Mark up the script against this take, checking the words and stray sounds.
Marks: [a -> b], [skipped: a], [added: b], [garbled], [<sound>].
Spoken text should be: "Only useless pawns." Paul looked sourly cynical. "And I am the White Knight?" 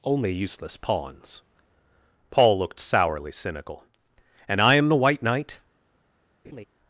"Only useless pawns." Paul looked sourly cynical. "And I am the White Knight?" [laugh]